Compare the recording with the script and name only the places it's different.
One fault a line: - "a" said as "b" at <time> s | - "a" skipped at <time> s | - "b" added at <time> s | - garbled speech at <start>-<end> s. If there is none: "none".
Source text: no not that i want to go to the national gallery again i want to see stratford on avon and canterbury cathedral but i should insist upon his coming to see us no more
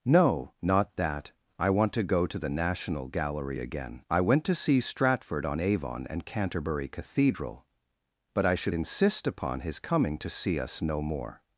- "want" said as "went" at 4.2 s